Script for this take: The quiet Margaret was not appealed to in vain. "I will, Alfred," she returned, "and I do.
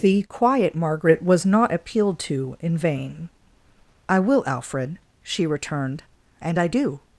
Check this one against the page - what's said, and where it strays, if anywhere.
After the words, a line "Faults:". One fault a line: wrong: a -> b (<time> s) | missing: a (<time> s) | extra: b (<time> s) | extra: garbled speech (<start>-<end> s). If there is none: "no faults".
The quiet Margaret was not appealed to in vain. "I will, Alfred," she returned, "and I do.
Faults:
no faults